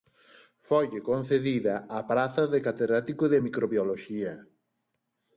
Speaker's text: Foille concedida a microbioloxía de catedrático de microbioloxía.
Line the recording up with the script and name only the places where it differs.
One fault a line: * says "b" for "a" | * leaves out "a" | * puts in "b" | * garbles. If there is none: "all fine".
* says "praza" for "microbioloxía"